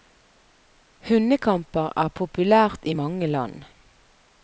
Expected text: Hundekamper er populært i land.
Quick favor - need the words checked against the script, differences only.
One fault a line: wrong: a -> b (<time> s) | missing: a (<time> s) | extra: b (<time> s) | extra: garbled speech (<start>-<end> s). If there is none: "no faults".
extra: mange (2.9 s)